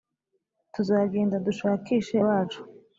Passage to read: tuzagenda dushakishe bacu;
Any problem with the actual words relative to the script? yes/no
no